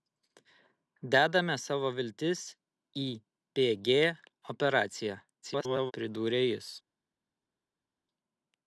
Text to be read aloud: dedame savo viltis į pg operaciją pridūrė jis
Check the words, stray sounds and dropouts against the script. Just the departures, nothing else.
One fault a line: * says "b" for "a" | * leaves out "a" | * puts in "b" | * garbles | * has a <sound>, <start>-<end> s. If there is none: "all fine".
* garbles